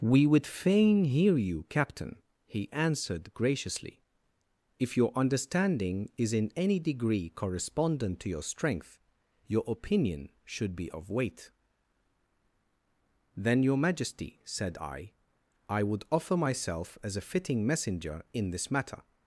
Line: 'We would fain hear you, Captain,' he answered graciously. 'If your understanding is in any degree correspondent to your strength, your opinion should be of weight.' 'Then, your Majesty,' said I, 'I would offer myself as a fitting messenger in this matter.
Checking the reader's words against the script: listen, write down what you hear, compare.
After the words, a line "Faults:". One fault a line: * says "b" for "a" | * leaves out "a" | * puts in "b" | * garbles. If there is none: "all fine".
'We would fain hear you, Captain,' he answered graciously. 'If your understanding is in any degree correspondent to your strength, your opinion should be of weight.' 'Then, your Majesty,' said I, 'I would offer myself as a fitting messenger in this matter.
Faults:
all fine